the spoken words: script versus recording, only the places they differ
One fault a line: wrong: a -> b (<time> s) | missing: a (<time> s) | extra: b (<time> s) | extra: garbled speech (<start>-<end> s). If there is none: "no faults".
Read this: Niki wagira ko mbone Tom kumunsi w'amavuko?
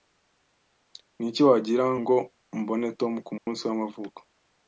wrong: ko -> ngo (2.0 s)